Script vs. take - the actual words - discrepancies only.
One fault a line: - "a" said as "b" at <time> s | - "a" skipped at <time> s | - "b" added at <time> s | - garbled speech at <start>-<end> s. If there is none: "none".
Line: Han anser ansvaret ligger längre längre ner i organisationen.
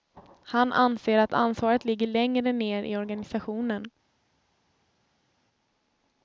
- "att" added at 1.2 s
- "längre" skipped at 2.5 s